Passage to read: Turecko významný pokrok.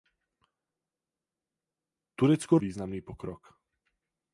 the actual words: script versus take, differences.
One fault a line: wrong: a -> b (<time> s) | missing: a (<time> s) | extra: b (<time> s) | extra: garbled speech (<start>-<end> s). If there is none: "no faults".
no faults